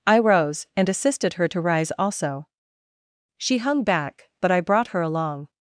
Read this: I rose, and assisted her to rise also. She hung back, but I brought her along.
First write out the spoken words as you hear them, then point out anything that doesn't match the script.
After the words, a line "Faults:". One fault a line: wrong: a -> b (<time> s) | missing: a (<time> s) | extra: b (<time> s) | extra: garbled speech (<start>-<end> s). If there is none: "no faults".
I rose, and assisted her to rise also. She hung back, but I brought her along.
Faults:
no faults